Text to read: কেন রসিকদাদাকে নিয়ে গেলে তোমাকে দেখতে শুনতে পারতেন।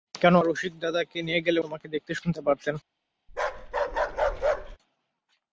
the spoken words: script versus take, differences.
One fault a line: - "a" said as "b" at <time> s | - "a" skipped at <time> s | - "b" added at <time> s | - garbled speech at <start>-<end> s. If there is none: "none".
none